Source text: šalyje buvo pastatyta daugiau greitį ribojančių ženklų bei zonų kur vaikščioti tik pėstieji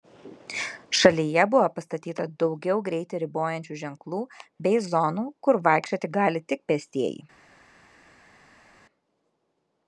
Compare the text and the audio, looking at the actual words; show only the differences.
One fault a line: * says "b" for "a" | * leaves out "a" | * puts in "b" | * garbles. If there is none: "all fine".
* puts in "gali"